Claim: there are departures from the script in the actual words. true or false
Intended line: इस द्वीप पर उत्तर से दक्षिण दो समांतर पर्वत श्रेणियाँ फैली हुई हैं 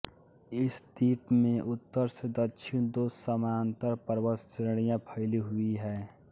true